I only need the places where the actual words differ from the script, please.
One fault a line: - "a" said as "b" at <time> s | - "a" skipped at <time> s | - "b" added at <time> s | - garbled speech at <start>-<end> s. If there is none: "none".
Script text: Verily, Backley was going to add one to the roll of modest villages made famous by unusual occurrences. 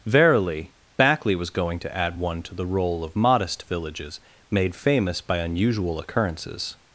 none